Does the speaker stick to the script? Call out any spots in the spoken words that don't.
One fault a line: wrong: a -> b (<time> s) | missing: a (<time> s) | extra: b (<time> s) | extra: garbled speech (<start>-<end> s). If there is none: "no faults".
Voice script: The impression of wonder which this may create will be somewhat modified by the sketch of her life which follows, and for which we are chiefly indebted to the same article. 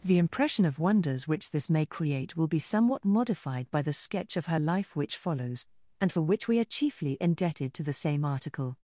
wrong: wonder -> wonders (0.8 s)